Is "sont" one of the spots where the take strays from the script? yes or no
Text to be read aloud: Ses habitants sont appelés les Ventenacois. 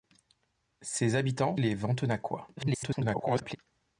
yes